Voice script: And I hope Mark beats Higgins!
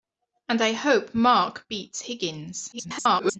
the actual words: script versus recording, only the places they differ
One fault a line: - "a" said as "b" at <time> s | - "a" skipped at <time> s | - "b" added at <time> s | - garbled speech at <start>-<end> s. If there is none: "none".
- garbled speech at 2.7-3.4 s